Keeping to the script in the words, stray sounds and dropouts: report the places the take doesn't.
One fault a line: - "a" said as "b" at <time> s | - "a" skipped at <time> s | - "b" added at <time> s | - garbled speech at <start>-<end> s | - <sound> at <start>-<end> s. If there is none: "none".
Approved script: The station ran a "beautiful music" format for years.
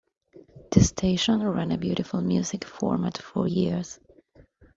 none